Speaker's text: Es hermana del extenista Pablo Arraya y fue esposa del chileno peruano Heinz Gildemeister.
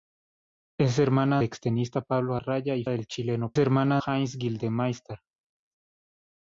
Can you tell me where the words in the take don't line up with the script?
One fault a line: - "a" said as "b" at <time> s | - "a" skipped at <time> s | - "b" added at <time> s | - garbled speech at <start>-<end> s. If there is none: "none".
- "del" skipped at 1.4 s
- "fue esposa" skipped at 2.8 s
- "peruano" said as "hermana" at 3.6 s